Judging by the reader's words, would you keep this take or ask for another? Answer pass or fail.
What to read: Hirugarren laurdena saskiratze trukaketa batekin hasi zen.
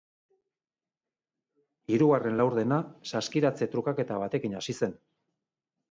pass